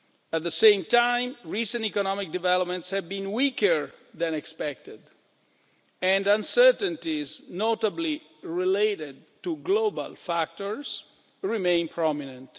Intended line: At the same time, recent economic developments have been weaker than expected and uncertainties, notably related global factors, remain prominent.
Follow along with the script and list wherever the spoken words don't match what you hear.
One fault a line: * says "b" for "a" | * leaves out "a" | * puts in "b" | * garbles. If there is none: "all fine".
* puts in "to"